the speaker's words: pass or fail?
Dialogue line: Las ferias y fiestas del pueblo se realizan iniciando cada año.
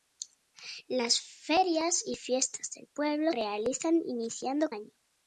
fail